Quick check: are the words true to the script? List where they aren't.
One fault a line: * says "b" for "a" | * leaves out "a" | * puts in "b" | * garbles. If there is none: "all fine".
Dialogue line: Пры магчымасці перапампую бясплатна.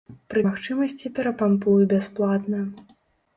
all fine